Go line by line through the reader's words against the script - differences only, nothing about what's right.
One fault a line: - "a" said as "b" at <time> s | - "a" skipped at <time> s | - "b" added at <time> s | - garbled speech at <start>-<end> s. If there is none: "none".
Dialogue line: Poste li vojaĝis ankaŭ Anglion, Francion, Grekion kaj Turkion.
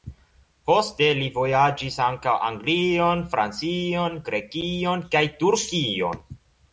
none